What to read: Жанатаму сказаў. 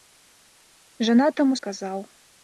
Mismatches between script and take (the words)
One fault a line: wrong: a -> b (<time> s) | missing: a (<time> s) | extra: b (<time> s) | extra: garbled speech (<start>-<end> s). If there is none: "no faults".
no faults